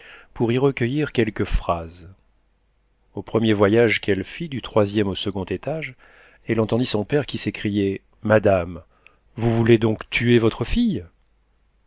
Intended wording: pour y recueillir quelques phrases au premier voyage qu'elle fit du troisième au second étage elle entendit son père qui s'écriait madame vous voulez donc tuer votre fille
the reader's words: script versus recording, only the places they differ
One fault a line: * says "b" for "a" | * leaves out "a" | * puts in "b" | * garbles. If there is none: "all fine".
all fine